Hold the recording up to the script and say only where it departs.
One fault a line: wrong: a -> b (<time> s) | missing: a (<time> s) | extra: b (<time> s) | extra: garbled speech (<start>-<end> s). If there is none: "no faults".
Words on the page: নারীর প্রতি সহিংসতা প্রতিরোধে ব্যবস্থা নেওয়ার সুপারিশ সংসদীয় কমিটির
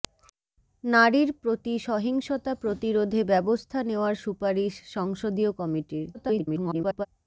extra: garbled speech (6.1-7.1 s)